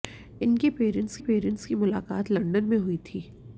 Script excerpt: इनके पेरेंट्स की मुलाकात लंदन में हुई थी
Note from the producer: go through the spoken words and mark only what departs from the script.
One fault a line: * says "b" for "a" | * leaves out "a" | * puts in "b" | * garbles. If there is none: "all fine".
* puts in "पेरेंट्स"